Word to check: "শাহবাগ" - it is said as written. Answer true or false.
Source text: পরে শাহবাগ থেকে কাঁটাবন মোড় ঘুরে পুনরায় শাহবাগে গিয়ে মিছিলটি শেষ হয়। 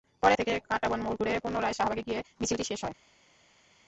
false